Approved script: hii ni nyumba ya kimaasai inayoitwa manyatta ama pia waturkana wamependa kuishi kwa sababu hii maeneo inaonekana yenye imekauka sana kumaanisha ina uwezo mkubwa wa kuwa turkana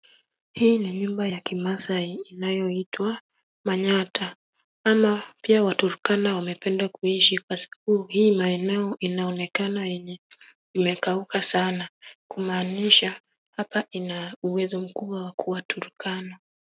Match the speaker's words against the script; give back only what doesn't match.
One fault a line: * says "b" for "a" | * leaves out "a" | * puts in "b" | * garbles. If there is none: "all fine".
* puts in "hapa"